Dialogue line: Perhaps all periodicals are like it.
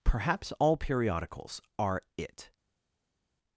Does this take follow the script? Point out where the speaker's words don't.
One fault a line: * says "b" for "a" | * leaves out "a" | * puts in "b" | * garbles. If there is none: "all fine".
* leaves out "like"